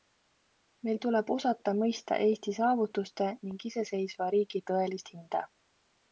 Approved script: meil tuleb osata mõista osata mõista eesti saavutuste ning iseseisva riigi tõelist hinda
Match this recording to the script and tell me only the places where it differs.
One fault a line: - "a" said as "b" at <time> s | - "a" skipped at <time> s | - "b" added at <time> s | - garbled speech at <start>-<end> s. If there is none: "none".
- "osata mõista" skipped at 2.2 s